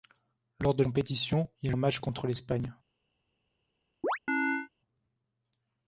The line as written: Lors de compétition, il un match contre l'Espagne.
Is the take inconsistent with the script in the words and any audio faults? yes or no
yes